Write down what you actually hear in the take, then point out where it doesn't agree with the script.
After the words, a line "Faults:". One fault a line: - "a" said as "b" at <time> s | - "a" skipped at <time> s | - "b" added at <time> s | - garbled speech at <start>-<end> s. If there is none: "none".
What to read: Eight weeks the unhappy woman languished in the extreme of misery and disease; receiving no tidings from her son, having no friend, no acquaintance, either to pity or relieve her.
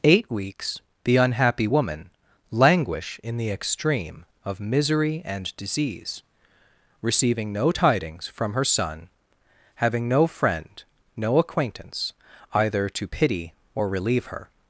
Eight weeks the unhappy woman languish in the extreme of misery and disease; receiving no tidings from her son, having no friend, no acquaintance, either to pity or relieve her.
Faults:
- "languished" said as "languish" at 2.5 s